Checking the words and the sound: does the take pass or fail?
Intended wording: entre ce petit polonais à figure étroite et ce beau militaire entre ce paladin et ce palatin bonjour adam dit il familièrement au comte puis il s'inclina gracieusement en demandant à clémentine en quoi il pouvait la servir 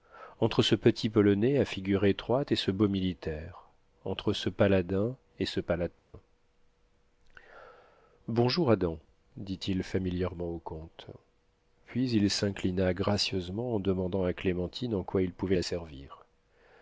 fail